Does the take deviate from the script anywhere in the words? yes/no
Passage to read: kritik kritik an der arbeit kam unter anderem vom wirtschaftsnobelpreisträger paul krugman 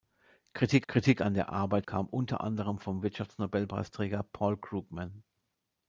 no